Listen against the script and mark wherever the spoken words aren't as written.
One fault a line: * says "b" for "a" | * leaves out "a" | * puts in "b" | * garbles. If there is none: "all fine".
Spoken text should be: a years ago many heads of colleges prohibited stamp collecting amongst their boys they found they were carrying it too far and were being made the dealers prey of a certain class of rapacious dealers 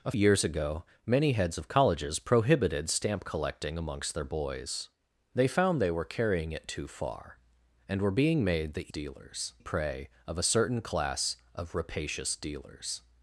all fine